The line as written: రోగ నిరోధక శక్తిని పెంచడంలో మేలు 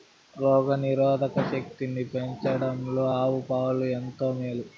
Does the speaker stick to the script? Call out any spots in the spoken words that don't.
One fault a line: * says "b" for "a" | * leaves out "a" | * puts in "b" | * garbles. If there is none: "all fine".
* puts in "ఆవు పాలు ఎంతో"